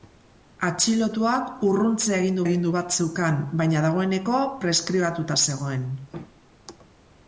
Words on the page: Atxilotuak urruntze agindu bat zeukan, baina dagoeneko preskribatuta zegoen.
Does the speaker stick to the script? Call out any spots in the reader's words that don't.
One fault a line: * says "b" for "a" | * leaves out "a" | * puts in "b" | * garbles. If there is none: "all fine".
* puts in "agindu"